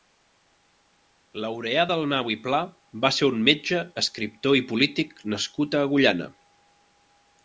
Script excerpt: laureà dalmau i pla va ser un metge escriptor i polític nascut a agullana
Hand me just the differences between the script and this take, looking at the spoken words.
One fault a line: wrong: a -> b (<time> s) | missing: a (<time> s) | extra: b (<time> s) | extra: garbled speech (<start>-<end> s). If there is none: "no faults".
no faults